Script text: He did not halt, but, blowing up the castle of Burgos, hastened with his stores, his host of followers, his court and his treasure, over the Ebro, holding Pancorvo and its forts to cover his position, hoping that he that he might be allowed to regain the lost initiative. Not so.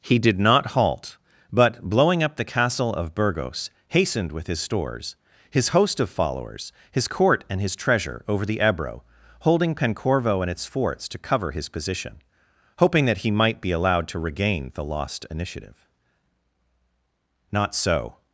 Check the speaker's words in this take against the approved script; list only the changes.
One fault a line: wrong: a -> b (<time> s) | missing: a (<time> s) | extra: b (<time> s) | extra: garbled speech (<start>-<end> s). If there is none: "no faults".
missing: that he (13.3 s)